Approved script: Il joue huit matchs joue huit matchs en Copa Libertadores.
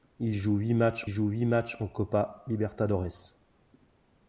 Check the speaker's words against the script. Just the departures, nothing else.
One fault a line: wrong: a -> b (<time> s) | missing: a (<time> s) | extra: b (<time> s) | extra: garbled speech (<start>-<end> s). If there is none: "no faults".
no faults